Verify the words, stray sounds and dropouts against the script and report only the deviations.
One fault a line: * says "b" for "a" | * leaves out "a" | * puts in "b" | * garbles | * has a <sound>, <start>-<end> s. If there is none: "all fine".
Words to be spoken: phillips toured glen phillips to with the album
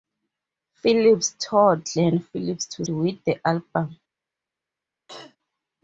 * has a throat clearing, 5.1-5.4 s